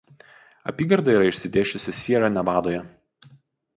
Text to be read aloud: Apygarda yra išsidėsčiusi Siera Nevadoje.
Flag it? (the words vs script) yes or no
no